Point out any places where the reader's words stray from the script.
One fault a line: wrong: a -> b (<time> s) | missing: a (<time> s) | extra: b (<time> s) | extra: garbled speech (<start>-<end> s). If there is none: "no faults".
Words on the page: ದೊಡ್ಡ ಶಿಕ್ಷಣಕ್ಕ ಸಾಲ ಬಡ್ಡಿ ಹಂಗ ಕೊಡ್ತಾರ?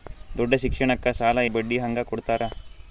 no faults